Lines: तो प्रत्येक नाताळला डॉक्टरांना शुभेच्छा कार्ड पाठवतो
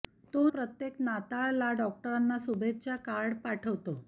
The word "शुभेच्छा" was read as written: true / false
true